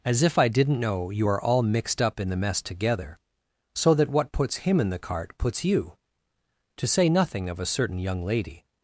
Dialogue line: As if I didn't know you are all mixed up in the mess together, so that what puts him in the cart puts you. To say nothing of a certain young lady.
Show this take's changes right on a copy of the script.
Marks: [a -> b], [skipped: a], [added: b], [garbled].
As if I didn't know you are all mixed up in the mess together, so that what puts him in the cart puts you. To say nothing of a certain young lady.